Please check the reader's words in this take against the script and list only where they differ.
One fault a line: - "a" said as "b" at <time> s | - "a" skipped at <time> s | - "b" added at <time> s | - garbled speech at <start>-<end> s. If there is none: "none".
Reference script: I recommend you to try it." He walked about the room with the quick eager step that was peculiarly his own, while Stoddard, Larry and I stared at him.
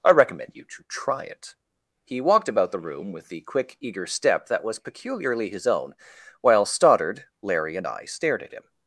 none